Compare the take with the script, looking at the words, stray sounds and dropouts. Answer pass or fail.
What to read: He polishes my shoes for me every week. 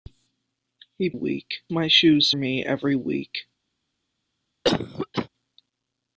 fail